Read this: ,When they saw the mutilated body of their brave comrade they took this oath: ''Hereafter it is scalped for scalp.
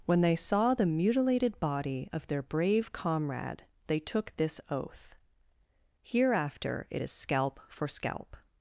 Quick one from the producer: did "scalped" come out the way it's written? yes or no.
no